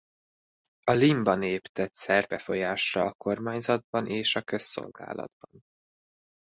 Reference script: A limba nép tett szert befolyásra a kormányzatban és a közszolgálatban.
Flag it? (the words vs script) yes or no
no